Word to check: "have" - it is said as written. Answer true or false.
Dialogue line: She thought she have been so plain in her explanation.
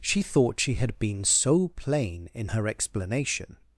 false